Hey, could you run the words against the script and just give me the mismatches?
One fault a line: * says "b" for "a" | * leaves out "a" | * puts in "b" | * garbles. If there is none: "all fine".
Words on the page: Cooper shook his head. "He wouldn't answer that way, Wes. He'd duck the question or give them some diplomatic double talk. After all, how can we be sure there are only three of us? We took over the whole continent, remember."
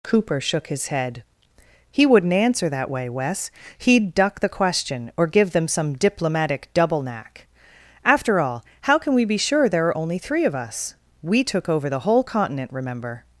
* says "knack" for "talk"